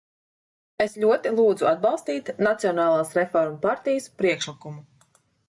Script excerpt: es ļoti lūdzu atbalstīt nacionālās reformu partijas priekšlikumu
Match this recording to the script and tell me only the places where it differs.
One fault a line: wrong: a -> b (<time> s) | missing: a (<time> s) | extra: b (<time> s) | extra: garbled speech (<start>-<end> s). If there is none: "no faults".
no faults